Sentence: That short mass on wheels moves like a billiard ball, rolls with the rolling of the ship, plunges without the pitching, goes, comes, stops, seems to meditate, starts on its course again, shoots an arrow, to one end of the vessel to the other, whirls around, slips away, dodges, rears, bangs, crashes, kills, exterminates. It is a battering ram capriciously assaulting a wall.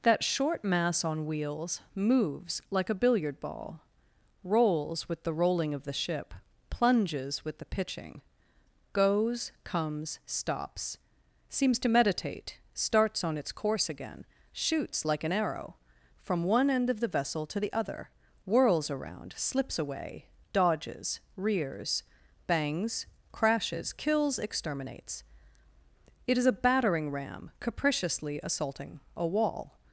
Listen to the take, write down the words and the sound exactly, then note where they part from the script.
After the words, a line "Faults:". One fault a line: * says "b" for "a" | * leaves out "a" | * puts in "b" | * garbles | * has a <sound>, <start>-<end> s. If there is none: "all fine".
That short mass on wheels moves like a billiard ball, rolls with the rolling of the ship, plunges with the pitching, goes, comes, stops, seems to meditate, starts on its course again, shoots like an arrow, from one end of the vessel to the other, whirls around, slips away, dodges, rears, bangs, crashes, kills, exterminates. It is a battering ram capriciously assaulting a wall.
Faults:
* says "with" for "without"
* puts in "like"
* says "from" for "to"